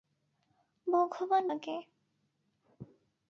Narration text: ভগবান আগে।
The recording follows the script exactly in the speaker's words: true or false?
true